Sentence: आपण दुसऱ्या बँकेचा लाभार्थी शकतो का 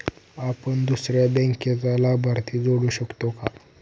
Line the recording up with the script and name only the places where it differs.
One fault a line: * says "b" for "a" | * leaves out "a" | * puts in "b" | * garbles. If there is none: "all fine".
* puts in "जोडू"